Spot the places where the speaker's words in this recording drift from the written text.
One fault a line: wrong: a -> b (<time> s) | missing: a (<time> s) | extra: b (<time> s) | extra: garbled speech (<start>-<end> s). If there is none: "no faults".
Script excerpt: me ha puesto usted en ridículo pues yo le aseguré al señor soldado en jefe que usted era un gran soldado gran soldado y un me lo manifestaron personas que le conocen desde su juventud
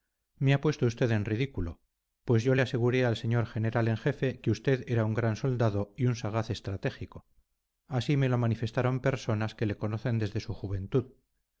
wrong: soldado -> general (3.5 s)
wrong: gran soldado y un -> y un sagaz estratégico así (6.0 s)